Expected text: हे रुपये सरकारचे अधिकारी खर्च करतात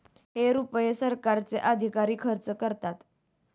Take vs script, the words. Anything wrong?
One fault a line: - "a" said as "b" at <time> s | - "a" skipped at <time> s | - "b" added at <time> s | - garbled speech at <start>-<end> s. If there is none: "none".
none